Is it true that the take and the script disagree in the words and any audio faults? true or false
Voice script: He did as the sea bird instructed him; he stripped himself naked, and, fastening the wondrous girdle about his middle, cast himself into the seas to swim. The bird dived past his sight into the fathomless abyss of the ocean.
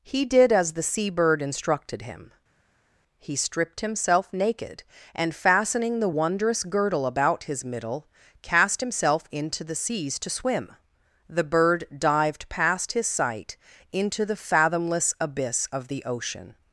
false